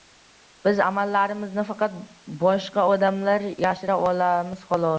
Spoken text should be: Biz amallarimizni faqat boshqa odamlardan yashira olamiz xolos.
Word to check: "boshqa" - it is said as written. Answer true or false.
true